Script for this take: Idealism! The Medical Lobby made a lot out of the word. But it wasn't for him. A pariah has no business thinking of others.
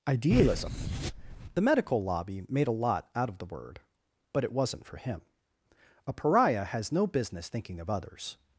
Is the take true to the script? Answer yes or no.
yes